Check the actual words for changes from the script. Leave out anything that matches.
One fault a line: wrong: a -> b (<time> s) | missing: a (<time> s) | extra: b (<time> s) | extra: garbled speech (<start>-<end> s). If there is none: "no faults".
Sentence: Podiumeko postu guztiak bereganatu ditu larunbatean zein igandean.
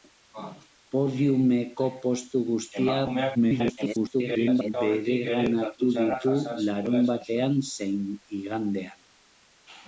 extra: garbled speech (3.3-4.7 s)